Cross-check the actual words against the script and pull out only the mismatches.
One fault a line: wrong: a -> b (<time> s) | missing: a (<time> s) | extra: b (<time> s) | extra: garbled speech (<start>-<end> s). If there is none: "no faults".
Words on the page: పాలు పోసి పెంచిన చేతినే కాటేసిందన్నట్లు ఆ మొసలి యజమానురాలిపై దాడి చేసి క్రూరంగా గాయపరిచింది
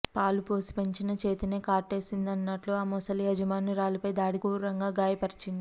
missing: చేసి (4.4 s)